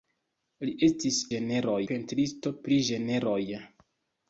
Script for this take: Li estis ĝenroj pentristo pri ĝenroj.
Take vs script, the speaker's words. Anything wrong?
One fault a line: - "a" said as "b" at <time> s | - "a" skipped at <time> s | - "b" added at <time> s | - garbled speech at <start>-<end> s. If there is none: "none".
none